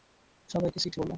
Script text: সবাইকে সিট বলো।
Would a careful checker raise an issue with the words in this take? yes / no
no